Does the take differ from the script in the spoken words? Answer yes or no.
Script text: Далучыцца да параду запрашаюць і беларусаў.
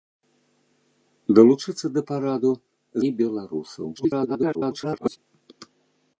yes